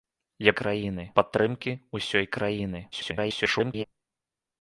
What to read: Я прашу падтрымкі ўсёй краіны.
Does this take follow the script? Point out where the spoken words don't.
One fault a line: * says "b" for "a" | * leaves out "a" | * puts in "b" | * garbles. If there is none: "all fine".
* says "краіны" for "прашу"
* garbles